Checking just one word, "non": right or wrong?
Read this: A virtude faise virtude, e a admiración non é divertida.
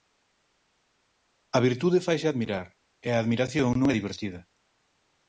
right